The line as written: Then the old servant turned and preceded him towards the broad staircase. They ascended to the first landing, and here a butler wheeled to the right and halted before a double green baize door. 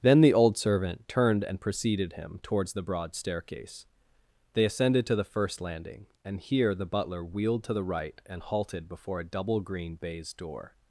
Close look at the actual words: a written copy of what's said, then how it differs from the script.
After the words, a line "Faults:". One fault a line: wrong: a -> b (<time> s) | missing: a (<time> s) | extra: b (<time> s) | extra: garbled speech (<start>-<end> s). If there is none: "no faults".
Then the old servant turned and preceded him towards the broad staircase. They ascended to the first landing, and here the butler wheeled to the right and halted before a double green baize door.
Faults:
wrong: a -> the (6.7 s)